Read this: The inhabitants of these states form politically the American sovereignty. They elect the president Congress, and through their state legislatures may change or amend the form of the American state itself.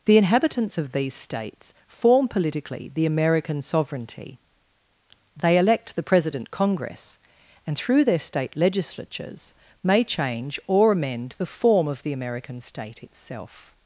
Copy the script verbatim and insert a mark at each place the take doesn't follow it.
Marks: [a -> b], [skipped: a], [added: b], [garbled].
The inhabitants of these states form politically the American sovereignty. They elect the president Congress, and through their state legislatures may change or amend the form of the American state itself.